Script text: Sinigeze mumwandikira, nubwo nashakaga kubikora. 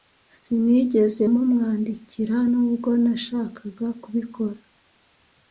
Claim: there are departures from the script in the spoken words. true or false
false